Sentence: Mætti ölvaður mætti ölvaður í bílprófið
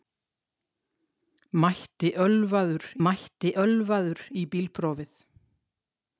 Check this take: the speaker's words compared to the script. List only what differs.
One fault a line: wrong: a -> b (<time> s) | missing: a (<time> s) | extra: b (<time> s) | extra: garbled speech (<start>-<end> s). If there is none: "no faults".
no faults